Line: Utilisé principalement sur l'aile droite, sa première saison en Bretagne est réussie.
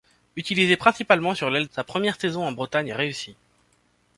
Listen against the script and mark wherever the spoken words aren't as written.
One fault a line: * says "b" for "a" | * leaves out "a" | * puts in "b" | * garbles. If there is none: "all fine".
* leaves out "droite"